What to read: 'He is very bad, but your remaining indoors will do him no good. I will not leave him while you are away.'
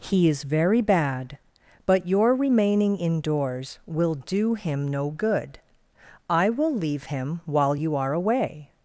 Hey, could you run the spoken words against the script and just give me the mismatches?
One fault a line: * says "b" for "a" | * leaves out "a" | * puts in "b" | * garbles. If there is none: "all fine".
* leaves out "not"